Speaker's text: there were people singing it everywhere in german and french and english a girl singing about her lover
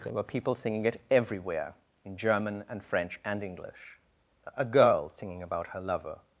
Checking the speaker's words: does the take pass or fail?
pass